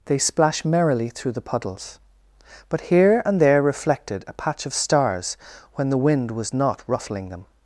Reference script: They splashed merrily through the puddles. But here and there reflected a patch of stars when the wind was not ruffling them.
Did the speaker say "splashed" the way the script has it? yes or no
no